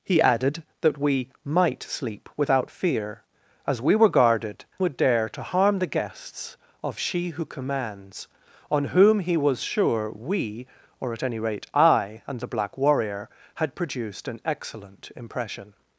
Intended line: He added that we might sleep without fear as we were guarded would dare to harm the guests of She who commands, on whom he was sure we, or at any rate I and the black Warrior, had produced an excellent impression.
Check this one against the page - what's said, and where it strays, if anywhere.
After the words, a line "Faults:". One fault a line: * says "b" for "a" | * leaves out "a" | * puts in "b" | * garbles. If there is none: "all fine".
He added that we might sleep without fear as we were guarded would dare to harm the guests of She who commands, on whom he was sure we, or at any rate I and the black Warrior, had produced an excellent impression.
Faults:
all fine